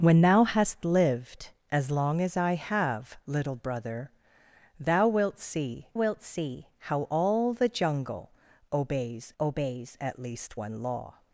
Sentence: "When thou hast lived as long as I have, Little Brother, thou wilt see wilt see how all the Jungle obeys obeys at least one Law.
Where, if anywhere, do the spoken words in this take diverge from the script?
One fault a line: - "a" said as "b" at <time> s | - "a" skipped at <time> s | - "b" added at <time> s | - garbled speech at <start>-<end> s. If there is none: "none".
none